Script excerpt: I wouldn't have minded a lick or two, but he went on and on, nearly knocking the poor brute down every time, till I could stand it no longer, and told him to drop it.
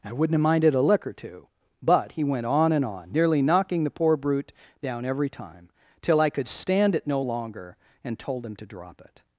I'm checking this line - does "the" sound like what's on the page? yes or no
yes